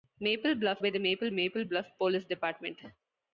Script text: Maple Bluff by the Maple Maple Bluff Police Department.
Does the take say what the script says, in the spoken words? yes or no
yes